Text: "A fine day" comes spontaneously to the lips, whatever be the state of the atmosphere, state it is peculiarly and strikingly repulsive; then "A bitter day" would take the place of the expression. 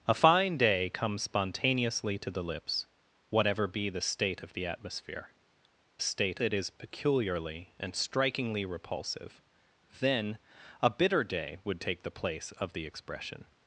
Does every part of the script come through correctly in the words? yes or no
yes